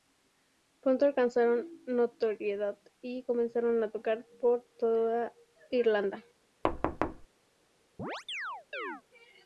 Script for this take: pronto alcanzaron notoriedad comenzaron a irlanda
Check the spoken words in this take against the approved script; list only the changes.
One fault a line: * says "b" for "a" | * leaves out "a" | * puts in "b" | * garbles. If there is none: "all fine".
* puts in "y"
* puts in "tocar por toda"